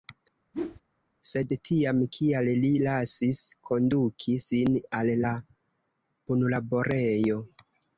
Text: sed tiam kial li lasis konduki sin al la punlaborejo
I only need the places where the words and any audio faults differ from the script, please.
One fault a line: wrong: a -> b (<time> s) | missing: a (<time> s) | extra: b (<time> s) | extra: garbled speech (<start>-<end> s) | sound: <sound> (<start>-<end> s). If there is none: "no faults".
sound: whoosh (0.5-0.8 s)